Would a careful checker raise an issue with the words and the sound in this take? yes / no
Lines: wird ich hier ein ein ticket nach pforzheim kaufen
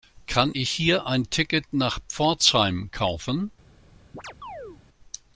yes